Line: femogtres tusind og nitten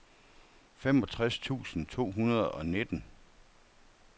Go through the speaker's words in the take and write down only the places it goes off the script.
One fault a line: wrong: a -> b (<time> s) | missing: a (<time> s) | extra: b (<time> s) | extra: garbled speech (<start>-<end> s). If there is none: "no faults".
extra: to hundrede (1.9 s)